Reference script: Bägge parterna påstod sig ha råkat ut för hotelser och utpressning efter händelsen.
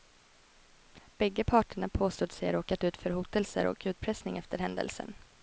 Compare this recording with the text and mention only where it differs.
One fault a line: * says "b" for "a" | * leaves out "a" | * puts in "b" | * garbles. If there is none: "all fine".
all fine